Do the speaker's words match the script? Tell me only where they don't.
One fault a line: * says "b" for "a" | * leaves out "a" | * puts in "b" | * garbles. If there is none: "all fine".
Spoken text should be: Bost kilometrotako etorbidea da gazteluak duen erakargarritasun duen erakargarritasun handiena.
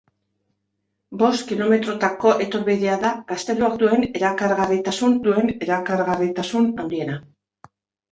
all fine